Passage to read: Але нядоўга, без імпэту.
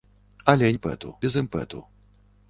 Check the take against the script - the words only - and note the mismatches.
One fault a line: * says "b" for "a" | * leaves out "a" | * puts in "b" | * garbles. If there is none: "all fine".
* says "імпэту" for "нядоўга"